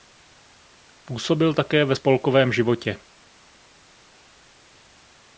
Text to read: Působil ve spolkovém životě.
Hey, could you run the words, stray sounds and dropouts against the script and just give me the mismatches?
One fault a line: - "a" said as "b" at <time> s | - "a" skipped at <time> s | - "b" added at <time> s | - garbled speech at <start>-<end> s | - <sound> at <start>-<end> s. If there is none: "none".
- "také" added at 1.5 s